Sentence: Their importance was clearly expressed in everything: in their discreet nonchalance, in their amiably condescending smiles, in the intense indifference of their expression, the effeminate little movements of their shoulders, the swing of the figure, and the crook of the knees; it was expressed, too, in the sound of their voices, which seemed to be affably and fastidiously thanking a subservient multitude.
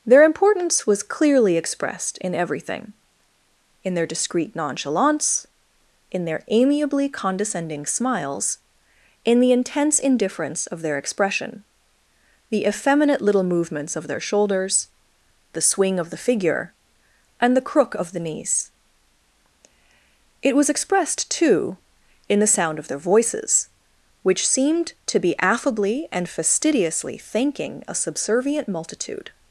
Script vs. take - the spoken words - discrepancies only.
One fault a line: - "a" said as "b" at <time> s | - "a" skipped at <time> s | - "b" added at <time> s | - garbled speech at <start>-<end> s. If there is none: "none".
none